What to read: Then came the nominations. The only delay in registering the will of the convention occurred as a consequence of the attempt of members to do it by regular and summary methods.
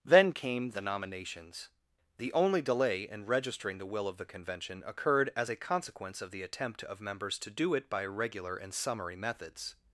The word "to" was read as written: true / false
true